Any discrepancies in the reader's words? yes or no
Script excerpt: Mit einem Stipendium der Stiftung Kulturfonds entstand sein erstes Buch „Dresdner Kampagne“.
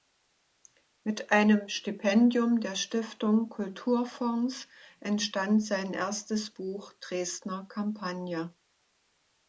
no